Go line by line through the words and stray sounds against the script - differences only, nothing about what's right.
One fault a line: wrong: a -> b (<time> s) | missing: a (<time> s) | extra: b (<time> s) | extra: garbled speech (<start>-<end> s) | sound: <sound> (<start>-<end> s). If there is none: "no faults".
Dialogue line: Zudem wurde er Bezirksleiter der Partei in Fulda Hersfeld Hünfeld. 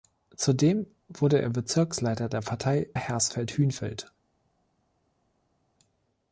missing: in Fulda (2.9 s)